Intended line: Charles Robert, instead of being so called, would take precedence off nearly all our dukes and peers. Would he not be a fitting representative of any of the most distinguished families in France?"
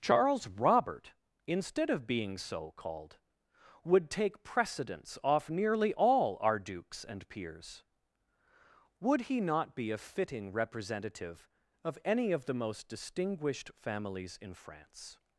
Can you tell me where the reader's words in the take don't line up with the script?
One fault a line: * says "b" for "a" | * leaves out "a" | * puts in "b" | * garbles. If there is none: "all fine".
all fine